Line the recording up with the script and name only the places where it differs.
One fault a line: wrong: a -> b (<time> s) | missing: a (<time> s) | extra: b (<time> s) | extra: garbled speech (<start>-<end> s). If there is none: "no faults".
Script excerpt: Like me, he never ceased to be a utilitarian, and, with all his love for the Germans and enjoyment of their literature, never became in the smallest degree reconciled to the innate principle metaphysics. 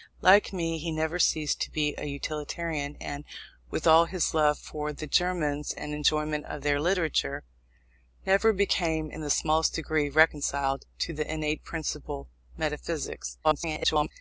extra: garbled speech (13.4-14.1 s)